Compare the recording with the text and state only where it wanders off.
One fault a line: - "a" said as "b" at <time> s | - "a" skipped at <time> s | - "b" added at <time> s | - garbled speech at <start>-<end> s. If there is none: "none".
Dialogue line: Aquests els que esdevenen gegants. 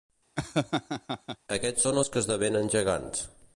- "són" added at 1.8 s